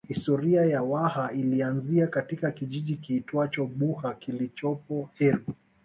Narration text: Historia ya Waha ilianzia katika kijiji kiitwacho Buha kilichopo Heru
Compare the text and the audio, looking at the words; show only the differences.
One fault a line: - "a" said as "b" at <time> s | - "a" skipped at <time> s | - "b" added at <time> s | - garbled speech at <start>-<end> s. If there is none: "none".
none